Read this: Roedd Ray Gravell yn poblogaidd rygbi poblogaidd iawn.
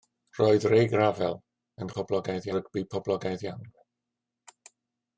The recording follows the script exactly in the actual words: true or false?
true